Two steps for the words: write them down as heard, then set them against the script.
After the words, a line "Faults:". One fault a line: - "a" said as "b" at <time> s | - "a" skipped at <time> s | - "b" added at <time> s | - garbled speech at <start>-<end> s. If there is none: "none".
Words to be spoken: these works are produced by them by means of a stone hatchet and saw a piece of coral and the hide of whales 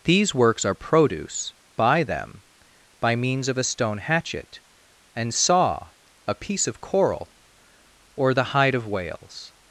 these works are produce by them by means of a stone hatchet and saw a piece of coral or the hide of whales
Faults:
- "produced" said as "produce" at 0.8 s
- "and" said as "or" at 8.2 s